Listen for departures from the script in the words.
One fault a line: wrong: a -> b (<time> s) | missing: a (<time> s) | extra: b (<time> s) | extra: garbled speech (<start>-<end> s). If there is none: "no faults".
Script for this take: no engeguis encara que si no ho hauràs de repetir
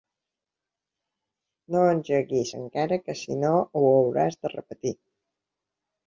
no faults